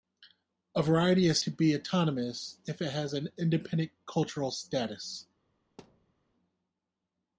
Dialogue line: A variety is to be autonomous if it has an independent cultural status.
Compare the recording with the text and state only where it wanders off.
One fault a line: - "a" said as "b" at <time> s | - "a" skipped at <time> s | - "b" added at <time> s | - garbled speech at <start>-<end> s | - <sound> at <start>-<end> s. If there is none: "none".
- thud at 5.8-6.1 s